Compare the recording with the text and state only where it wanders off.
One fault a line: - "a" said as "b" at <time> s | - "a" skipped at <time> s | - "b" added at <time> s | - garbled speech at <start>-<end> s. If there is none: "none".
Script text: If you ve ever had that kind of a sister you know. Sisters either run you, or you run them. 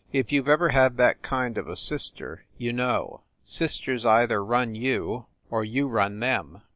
none